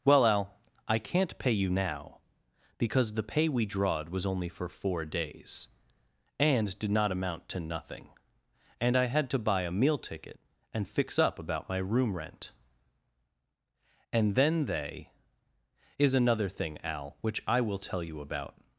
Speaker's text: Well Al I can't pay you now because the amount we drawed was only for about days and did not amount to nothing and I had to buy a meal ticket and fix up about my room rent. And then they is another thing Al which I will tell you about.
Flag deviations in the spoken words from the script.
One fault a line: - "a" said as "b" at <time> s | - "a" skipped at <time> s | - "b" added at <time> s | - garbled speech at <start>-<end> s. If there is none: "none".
- "amount" said as "pay" at 3.3 s
- "about" said as "four" at 4.7 s